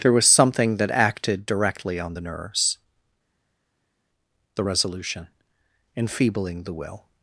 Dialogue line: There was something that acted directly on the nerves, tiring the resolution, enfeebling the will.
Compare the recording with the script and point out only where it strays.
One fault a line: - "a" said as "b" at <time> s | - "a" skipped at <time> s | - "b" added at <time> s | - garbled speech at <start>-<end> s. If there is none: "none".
- "tiring" skipped at 2.8 s